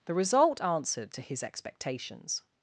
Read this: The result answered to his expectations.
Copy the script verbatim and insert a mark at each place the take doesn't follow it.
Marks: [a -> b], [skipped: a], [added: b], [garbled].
The result answered to his expectations.